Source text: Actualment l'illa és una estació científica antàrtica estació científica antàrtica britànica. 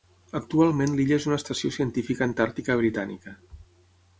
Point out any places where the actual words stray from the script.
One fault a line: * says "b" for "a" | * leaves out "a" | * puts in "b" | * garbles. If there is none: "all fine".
* leaves out "estació científica antàrtica"